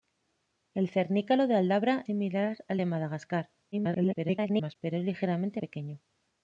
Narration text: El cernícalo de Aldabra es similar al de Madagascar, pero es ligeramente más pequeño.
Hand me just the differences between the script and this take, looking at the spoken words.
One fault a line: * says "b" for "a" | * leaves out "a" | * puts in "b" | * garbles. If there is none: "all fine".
* leaves out "es"
* garbles
* leaves out "más"